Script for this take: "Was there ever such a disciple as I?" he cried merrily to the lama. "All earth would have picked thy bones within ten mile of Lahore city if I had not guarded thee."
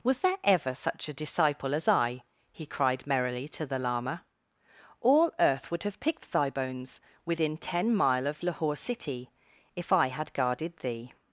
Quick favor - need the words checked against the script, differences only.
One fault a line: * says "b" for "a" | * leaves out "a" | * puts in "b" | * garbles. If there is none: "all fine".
* leaves out "not"